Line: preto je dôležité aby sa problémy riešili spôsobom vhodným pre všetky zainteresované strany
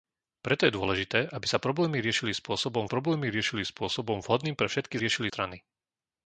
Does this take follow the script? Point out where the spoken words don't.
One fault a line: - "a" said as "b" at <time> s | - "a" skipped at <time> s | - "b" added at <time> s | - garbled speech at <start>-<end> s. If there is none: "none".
- "problémy riešili spôsobom" added at 2.9 s
- "zainteresované" said as "riešili" at 5.0 s